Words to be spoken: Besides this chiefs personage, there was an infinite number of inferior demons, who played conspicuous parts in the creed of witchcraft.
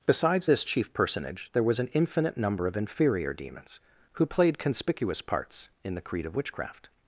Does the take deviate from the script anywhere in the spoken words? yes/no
yes